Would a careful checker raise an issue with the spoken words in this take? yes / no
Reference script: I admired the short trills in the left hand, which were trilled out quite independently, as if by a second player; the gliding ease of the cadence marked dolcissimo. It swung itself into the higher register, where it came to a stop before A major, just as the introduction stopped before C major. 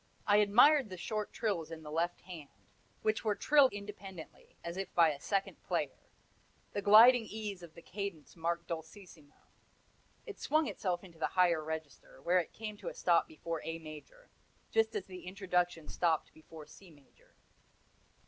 yes